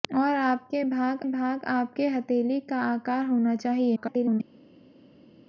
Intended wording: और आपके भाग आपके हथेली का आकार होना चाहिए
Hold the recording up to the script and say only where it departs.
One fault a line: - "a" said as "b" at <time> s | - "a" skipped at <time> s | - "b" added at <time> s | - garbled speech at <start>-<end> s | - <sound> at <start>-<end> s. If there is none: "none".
- "भाग" added at 1.3 s
- garbled speech at 4.0-4.4 s